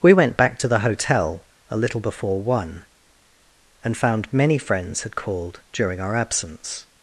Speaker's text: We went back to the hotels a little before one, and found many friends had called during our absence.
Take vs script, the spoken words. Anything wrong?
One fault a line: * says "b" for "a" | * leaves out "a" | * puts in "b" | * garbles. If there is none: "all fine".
* says "hotel" for "hotels"